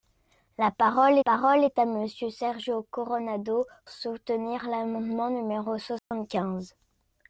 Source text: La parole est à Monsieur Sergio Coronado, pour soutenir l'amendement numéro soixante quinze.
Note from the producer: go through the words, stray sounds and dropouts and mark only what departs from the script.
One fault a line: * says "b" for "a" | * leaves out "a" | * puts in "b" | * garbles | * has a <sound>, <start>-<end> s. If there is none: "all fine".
* puts in "parole"
* leaves out "pour"
* has a dropout, 6.0-6.1 s